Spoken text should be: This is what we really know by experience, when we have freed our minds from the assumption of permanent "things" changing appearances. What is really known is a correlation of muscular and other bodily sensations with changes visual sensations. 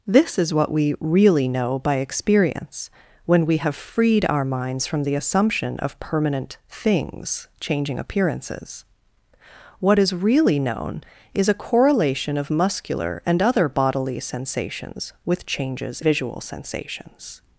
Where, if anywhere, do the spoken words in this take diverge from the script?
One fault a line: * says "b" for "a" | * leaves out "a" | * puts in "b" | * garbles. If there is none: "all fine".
all fine